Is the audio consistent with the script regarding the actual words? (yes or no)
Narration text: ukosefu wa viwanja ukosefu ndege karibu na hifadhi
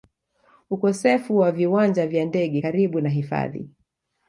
no